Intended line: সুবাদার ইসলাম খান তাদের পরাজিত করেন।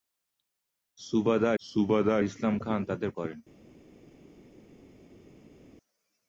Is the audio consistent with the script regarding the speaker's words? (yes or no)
no